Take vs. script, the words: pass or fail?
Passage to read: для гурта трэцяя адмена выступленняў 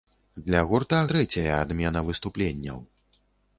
pass